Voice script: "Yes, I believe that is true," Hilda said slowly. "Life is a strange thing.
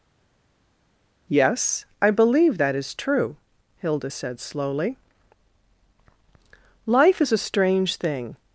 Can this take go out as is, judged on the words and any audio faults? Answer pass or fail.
pass